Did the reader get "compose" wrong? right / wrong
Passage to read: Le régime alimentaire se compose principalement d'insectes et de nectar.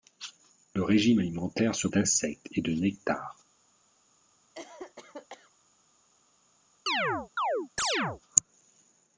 wrong